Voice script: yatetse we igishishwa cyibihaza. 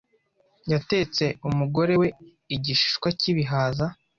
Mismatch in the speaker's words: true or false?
true